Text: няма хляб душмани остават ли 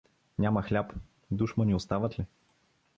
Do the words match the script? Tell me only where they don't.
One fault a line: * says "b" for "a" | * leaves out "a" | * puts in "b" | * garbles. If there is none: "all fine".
all fine